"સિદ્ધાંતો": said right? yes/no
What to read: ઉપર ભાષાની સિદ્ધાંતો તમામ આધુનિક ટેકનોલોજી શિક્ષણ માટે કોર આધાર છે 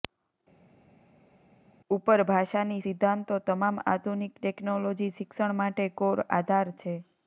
yes